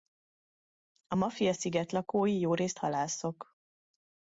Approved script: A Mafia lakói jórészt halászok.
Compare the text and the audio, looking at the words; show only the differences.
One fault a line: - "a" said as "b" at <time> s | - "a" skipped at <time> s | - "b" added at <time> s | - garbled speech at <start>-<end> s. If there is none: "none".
- "sziget" added at 1.5 s